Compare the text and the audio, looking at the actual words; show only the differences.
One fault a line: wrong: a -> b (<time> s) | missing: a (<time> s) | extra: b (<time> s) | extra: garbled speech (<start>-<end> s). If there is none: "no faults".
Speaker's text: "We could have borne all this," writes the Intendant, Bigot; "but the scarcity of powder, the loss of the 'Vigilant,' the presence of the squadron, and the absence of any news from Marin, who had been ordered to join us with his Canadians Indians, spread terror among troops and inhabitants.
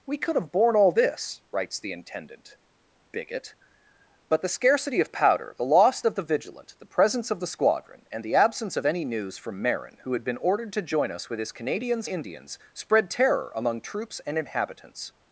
no faults